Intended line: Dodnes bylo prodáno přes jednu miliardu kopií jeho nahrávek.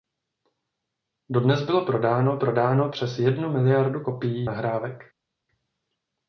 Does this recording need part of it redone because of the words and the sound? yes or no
yes